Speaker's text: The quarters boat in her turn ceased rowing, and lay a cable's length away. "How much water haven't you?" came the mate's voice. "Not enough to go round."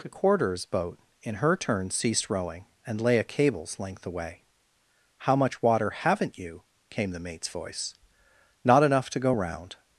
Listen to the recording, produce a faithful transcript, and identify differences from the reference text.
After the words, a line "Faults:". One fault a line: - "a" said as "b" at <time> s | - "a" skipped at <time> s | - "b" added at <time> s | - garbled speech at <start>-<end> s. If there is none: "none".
The quarters boat in her turn ceased rowing, and lay a cable's length away. "How much water haven't you?" came the mate's voice. "Not enough to go round."
Faults:
none